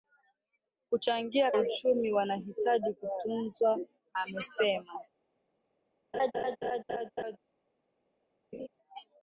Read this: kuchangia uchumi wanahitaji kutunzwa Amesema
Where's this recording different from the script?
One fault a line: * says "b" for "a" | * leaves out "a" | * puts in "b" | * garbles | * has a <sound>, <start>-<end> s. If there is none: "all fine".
* has a laugh, 6.1-7.4 s
* has a laugh, 8.5-8.7 s